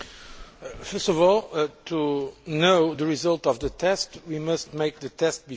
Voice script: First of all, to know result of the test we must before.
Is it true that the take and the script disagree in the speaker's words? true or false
true